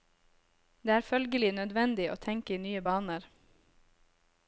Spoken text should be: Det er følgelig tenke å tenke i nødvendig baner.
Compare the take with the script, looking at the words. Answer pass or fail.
fail